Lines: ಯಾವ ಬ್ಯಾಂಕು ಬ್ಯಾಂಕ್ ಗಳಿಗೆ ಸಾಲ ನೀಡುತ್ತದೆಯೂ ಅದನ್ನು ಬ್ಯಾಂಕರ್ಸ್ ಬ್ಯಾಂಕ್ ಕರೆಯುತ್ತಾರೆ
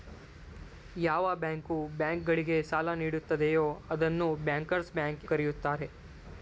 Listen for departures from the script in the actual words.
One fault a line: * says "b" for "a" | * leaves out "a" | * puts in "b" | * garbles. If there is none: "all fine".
all fine